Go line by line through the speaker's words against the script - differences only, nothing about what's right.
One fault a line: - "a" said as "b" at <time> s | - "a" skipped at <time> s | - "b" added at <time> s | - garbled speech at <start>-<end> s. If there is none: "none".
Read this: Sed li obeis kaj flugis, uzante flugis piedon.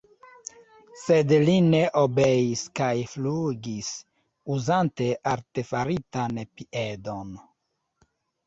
- "ne" added at 1.6 s
- "flugis" said as "artefaritan" at 5.3 s